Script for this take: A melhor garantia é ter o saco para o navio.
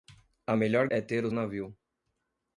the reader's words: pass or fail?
fail